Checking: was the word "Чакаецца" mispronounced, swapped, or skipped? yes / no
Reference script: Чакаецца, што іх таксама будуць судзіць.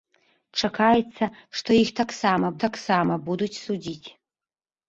no